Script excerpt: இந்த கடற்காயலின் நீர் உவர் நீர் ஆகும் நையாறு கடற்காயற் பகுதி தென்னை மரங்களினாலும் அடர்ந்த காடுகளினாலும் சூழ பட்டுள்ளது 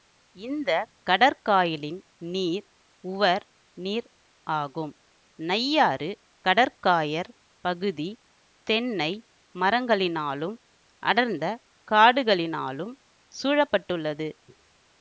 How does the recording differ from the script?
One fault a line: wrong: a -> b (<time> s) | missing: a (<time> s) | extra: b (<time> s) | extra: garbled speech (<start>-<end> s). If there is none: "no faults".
no faults